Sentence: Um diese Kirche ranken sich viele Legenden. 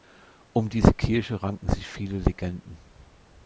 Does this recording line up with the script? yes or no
yes